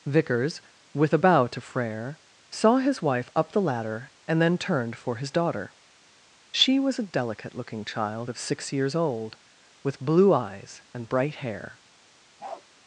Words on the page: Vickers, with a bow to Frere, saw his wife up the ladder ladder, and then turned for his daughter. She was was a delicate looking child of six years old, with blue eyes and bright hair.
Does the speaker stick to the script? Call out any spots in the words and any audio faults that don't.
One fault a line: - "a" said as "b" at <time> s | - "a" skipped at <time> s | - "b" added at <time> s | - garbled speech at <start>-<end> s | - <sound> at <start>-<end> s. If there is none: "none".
- "ladder" skipped at 4.1 s
- "was" skipped at 7.0 s
- bark at 12.4-12.6 s